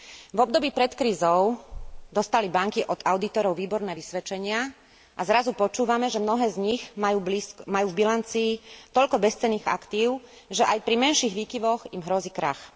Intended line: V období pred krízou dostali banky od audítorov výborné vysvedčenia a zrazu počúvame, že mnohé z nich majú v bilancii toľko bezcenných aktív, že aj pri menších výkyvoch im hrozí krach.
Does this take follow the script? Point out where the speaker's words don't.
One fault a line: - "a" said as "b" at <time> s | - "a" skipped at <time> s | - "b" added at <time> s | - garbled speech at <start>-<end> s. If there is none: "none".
none